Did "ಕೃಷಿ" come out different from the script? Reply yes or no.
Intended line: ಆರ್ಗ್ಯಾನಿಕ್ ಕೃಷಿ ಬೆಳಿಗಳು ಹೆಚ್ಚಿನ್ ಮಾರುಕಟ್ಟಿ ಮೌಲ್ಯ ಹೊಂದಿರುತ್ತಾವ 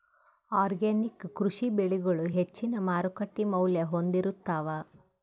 no